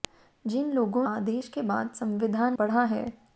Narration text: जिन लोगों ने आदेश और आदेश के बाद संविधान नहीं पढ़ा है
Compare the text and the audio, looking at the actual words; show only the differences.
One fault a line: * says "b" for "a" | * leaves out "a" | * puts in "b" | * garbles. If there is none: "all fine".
* leaves out "ने"
* leaves out "और आदेश"
* leaves out "नहीं"